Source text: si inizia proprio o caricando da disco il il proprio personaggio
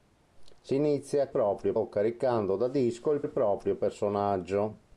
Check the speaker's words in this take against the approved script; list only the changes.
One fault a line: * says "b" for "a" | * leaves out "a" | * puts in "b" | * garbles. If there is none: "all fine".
all fine